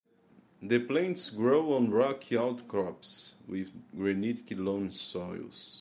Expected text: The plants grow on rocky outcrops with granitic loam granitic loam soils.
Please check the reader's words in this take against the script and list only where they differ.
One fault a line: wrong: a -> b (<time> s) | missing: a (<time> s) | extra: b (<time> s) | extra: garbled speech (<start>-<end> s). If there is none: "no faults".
missing: granitic loam (4.9 s)